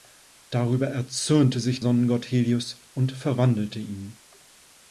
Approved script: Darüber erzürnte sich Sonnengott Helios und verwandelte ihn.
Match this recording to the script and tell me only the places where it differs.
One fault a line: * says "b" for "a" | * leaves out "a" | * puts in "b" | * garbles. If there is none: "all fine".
all fine